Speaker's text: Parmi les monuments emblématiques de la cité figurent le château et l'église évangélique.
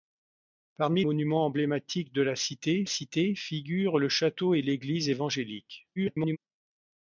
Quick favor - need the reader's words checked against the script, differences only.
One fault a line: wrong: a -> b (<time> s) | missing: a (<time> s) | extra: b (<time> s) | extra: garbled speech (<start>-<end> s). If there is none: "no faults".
missing: les (1.0 s)
extra: cité (2.9 s)
extra: garbled speech (6.0-6.4 s)